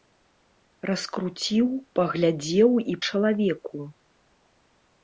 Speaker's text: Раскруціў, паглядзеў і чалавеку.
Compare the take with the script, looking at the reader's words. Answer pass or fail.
pass